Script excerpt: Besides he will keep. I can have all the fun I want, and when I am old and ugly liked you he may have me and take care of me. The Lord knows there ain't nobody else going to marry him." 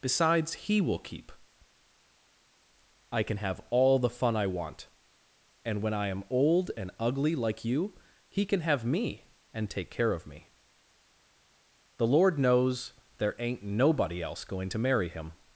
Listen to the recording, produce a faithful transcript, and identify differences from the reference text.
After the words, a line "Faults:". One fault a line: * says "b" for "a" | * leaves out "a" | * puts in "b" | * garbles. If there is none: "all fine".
Besides he will keep. I can have all the fun I want, and when I am old and ugly like you he can have me and take care of me. The Lord knows there ain't nobody else going to marry him."
Faults:
* says "like" for "liked"
* says "can" for "may"